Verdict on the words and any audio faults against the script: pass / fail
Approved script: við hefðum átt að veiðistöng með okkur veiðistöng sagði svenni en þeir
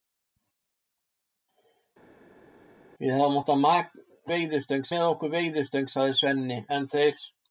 pass